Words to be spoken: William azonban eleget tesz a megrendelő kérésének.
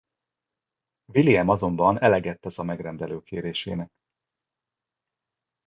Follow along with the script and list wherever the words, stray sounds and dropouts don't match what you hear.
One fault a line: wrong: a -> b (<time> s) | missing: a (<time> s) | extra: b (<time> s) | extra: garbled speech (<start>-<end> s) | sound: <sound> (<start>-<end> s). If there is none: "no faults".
no faults